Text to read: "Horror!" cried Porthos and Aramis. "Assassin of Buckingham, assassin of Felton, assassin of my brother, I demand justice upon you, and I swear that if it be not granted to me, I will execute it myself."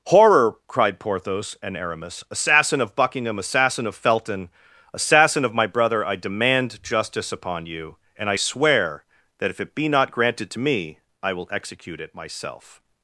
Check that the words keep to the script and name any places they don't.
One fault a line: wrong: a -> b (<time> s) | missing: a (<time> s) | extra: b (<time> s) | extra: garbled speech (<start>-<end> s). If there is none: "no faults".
no faults